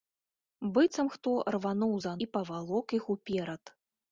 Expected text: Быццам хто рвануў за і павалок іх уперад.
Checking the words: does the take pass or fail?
pass